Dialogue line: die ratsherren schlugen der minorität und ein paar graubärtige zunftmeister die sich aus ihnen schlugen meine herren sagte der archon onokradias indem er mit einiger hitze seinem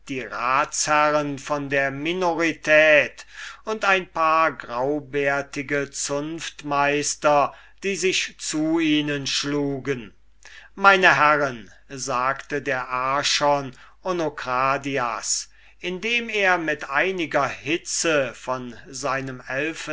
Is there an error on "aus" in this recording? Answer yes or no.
yes